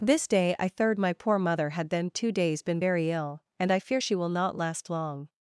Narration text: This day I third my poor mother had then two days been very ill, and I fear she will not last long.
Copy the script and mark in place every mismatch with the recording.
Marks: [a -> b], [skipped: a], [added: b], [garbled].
This day I third my poor mother had then two days been very ill, and I fear she will not last long.